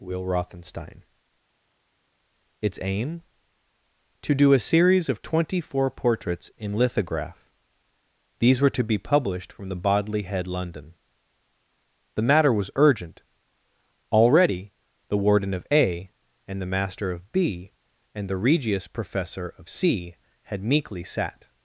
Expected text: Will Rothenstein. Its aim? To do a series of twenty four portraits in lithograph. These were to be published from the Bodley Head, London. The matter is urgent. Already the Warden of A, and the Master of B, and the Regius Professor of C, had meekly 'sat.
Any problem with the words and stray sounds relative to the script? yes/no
yes